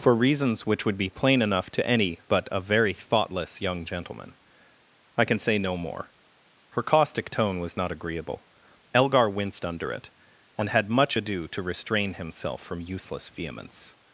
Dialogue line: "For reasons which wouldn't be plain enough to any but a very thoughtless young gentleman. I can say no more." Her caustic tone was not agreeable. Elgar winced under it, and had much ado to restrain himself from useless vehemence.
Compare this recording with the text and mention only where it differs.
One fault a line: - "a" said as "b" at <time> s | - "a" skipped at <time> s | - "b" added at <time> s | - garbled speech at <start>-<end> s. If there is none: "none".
- "wouldn't" said as "would" at 0.8 s